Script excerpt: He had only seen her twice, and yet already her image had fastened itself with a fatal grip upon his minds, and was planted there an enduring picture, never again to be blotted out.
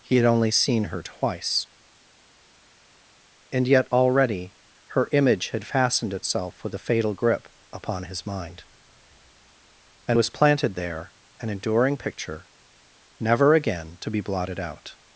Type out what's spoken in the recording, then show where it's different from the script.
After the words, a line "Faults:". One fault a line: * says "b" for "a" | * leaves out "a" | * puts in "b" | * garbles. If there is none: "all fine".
He had only seen her twice, and yet already her image had fastened itself with a fatal grip upon his mind, and was planted there an enduring picture, never again to be blotted out.
Faults:
* says "mind" for "minds"